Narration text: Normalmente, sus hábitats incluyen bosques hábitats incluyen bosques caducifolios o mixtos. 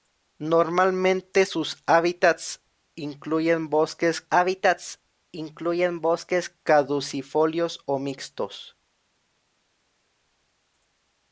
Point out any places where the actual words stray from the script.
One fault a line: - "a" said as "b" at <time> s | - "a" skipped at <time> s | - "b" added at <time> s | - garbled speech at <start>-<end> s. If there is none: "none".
none